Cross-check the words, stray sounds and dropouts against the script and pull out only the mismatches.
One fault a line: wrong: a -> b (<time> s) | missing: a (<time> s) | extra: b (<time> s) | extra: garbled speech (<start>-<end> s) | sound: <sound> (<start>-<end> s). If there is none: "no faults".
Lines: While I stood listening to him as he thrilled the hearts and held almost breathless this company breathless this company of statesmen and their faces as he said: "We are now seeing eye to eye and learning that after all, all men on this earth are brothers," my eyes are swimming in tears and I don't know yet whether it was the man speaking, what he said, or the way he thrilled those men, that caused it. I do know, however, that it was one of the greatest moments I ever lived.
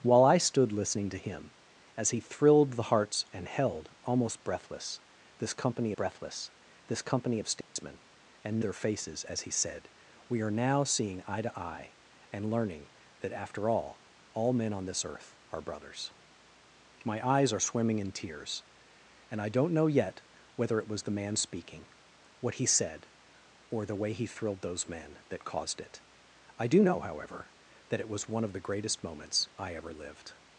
sound: dropout (7.6-7.8 s)